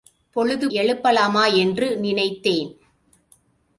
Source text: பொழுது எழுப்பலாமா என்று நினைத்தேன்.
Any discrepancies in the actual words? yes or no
no